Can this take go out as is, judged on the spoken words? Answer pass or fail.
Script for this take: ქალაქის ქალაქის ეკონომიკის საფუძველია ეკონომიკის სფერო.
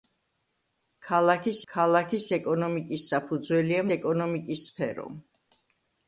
pass